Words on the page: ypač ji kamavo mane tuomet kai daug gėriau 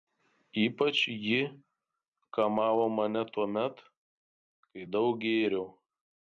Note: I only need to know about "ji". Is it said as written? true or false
true